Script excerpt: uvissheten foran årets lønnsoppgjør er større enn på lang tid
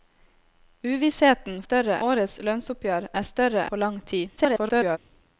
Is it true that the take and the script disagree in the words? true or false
true